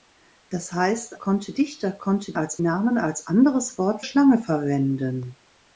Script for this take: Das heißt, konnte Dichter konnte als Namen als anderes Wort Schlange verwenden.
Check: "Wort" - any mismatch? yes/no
no